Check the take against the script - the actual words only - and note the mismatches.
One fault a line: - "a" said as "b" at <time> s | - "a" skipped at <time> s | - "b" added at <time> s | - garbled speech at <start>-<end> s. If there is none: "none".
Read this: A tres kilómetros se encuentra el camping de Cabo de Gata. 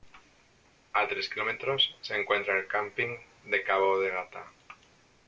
none